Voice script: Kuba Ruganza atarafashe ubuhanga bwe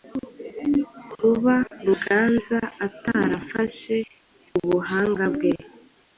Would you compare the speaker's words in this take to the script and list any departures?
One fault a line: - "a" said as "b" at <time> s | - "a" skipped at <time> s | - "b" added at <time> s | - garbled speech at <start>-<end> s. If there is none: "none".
none